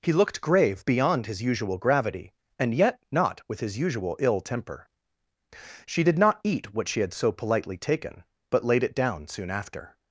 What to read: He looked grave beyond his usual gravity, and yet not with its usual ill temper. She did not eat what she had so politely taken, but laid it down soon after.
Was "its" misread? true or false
true